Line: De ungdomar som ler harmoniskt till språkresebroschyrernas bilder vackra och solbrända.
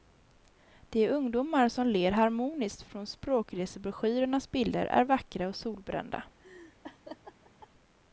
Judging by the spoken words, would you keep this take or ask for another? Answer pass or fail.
fail